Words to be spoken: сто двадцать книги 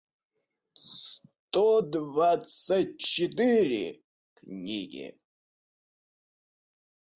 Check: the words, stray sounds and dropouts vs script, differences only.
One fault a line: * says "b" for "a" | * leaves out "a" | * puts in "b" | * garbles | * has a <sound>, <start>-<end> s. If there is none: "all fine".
* puts in "четыре"